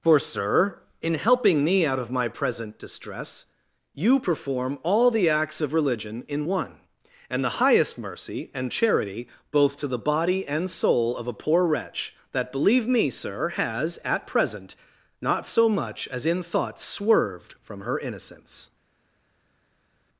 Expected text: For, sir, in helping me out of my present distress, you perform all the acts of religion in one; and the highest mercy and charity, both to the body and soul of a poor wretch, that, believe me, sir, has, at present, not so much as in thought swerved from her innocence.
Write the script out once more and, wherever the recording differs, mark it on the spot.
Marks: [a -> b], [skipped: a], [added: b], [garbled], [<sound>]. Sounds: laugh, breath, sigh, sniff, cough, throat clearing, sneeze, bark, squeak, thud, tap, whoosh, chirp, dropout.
For, sir, in helping me out of my present distress, you perform all the acts of religion in one; and the highest mercy and charity, both to the body and soul of a poor wretch, that, believe me, sir, has, at present, not so much as in thought swerved from her innocence.